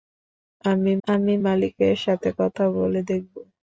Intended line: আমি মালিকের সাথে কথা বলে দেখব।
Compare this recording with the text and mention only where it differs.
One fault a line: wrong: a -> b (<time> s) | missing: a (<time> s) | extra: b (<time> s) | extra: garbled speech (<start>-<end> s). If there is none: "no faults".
extra: আমি (1.1 s)